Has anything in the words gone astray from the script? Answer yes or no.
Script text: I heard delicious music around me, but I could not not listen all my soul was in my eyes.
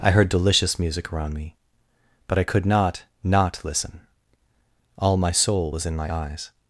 no